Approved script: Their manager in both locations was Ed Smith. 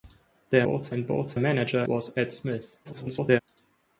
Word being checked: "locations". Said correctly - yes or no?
no